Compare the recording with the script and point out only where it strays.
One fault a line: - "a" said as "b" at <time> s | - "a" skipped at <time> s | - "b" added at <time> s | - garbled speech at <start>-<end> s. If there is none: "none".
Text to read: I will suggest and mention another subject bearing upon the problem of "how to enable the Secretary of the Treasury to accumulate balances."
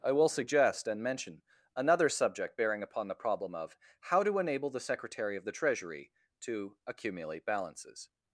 none